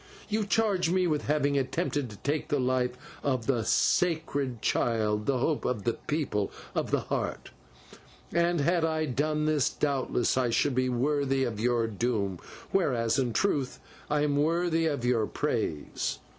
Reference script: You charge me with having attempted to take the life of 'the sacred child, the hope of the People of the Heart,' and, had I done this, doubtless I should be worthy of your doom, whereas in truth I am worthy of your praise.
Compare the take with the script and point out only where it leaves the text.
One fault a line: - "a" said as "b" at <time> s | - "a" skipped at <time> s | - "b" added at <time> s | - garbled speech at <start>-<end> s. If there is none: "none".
none